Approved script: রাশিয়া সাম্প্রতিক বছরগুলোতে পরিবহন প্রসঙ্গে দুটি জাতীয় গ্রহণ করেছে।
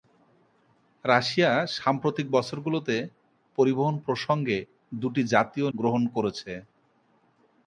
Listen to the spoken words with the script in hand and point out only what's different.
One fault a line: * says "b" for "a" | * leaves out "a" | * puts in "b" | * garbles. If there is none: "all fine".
all fine